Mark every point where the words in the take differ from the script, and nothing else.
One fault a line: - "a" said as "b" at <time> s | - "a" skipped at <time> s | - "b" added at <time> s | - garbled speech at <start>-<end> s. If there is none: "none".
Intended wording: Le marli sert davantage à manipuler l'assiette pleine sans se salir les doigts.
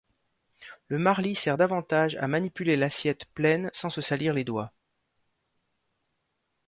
none